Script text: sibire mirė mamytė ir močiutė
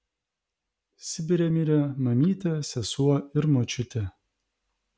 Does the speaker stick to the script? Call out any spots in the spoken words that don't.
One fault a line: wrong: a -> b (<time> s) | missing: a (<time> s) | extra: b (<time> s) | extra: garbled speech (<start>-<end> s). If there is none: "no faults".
extra: sesuo (2.7 s)